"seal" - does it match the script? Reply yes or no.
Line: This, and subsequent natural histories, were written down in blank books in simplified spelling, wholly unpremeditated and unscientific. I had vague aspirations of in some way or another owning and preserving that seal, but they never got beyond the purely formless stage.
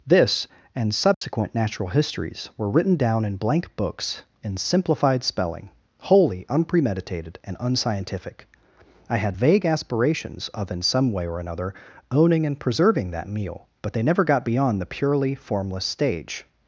no